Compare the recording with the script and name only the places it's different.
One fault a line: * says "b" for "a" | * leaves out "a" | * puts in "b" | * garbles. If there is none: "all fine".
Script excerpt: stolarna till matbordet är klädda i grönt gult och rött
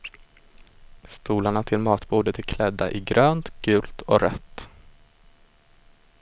all fine